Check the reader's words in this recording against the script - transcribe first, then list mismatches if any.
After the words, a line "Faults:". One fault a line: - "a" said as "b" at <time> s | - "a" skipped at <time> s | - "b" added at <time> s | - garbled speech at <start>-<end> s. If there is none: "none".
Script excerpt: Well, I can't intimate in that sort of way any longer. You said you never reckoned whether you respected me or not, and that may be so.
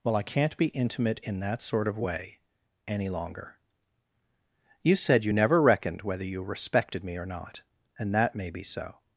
Well, I can't be intimate in that sort of way any longer. You said you never reckoned whether you respected me or not, and that may be so.
Faults:
- "be" added at 0.6 s